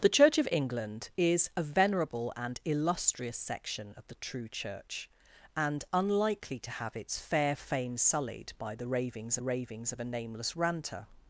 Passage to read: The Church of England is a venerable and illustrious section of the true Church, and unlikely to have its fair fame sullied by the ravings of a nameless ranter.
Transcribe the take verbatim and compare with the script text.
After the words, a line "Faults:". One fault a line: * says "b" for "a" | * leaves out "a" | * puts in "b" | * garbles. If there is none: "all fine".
The Church of England is a venerable and illustrious section of the true Church, and unlikely to have its fair fame sullied by the ravings ravings of a nameless ranter.
Faults:
* puts in "ravings"